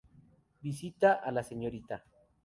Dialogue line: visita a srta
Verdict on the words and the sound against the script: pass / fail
fail